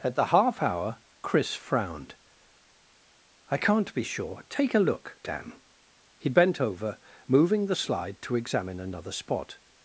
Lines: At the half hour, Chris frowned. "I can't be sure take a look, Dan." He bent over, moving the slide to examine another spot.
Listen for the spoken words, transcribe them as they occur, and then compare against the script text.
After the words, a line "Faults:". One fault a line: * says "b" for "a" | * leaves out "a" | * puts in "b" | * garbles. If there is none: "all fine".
At the half hour, Chris frowned. "I can't be sure take a look, Dan." He bent over, moving the slide to examine another spot.
Faults:
all fine